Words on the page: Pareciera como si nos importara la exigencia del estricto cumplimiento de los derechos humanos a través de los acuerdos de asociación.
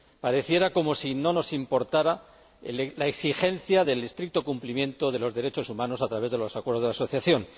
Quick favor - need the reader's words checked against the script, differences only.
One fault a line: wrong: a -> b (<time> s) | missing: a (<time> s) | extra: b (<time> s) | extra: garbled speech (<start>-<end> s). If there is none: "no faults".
extra: no (1.1 s)